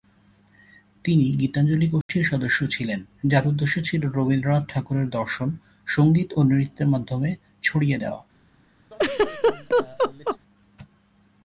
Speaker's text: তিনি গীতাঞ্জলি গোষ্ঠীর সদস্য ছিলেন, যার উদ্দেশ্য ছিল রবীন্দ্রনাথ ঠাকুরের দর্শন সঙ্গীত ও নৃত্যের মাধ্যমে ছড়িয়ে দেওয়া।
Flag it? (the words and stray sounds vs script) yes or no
yes